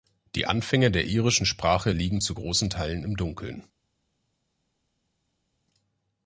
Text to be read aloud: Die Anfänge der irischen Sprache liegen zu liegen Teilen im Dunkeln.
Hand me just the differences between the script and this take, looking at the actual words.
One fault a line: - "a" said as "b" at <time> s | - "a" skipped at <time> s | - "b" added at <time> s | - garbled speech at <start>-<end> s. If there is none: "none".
- "liegen" said as "großen" at 2.3 s